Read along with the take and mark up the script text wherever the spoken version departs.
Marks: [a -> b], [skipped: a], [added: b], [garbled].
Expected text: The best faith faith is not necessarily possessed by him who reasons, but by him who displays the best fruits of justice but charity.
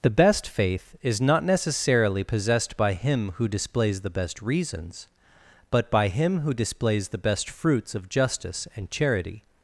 The best faith [skipped: faith] is not necessarily possessed by him who [added: displays the best] reasons, but by him who displays the best fruits of justice [but -> and] charity.